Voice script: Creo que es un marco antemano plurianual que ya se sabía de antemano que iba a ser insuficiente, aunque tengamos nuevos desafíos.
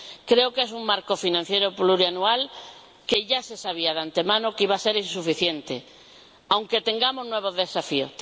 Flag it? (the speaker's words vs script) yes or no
yes